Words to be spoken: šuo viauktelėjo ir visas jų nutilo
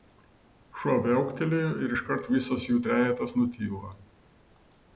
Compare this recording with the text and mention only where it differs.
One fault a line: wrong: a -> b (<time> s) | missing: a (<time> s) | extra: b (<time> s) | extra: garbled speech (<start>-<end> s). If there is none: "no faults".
extra: iškart (1.9 s)
extra: trejetas (2.8 s)